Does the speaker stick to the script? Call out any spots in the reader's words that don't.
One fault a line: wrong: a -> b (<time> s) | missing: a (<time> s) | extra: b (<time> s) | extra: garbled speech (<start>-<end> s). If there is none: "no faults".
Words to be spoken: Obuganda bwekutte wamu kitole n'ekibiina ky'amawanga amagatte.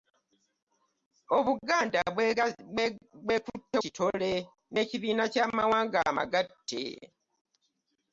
missing: wamu (3.8 s)